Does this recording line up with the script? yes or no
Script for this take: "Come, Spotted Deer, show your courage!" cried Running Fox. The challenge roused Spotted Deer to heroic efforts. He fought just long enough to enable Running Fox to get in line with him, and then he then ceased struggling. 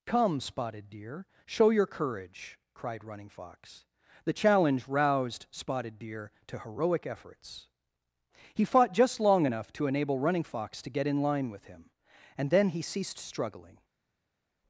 no